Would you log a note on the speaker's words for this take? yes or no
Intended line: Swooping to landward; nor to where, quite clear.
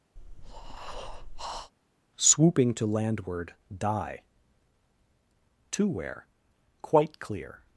yes